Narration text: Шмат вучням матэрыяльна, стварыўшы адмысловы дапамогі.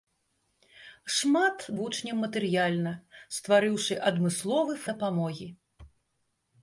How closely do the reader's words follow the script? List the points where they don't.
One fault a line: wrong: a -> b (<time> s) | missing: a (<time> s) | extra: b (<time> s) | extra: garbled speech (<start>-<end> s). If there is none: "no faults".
no faults